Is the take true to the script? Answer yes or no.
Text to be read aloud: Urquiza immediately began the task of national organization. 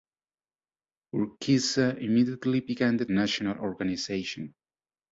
no